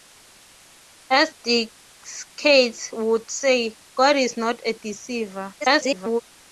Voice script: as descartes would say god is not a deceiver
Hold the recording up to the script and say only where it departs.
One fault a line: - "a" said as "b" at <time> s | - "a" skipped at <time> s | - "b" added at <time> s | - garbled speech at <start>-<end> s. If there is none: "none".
- garbled speech at 5.6-6.2 s